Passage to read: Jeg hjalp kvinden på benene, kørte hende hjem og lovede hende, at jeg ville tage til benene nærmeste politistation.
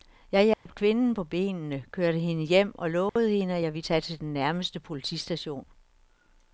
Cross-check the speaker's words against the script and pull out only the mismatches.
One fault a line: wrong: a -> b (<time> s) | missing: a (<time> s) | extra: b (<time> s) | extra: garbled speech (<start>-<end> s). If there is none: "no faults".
wrong: benene -> den (4.2 s)